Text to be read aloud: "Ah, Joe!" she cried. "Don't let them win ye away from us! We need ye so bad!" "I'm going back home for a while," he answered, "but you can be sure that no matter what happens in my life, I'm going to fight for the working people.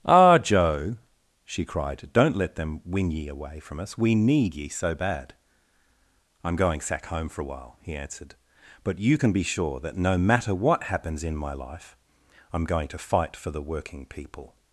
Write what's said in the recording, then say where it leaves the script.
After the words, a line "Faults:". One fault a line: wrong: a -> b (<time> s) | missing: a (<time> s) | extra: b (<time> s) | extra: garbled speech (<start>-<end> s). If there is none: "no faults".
"Ah, Joe!" she cried. "Don't let them win ye away from us! We need ye so bad!" "I'm going sack home for a while," he answered, "but you can be sure that no matter what happens in my life, I'm going to fight for the working people.
Faults:
wrong: back -> sack (6.8 s)